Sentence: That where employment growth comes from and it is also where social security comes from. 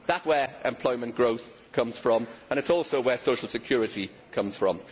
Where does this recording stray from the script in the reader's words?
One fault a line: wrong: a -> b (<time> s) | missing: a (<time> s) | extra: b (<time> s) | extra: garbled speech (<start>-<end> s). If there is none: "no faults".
no faults